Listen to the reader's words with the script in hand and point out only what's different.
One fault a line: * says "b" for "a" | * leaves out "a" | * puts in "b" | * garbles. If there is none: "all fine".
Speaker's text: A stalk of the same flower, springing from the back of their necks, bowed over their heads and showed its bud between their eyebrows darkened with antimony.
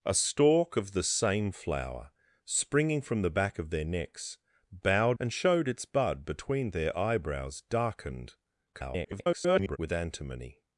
* leaves out "over their heads"
* garbles